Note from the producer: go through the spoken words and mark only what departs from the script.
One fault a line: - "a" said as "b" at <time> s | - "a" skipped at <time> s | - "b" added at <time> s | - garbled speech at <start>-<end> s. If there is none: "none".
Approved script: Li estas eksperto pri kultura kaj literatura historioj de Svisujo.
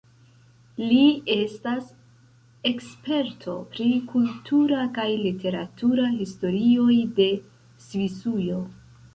none